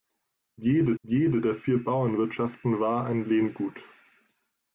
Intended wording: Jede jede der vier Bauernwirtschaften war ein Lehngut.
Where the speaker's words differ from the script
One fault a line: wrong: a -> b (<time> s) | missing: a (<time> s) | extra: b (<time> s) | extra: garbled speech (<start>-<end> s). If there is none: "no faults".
no faults